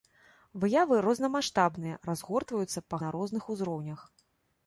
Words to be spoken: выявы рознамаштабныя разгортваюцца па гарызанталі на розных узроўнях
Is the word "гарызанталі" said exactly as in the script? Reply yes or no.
no